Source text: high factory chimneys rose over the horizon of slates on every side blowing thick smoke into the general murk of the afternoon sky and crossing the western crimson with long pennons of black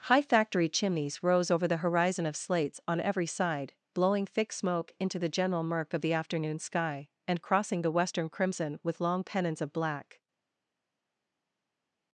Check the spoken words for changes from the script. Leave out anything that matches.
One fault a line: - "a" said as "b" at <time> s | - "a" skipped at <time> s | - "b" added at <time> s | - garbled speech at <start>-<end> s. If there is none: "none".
none